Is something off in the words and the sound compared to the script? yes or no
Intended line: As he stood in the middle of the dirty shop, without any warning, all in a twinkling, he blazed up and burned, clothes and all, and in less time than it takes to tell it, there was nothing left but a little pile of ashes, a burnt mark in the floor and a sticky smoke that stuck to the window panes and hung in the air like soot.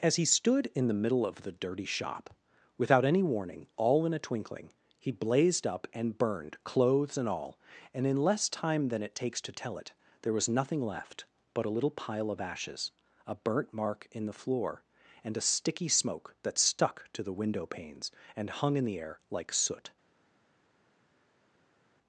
no